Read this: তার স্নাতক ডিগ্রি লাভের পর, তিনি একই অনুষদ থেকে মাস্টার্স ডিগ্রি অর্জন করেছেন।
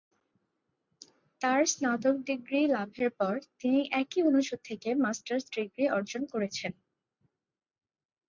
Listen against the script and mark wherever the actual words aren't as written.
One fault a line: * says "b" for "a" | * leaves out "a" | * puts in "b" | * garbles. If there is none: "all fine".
all fine